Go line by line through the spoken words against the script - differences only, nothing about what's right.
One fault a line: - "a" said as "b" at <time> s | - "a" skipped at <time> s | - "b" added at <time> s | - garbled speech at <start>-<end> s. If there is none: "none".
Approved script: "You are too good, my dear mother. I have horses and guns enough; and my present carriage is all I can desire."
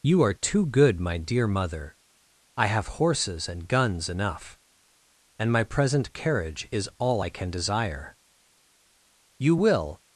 - "You will" added at 9.4 s